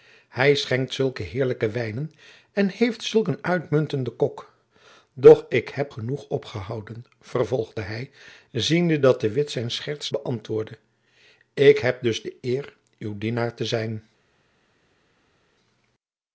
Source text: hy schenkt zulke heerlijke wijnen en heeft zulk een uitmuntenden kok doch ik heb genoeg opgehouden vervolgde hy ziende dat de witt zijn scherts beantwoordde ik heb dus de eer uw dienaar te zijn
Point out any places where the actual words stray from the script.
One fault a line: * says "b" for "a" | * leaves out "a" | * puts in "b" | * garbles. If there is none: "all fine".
all fine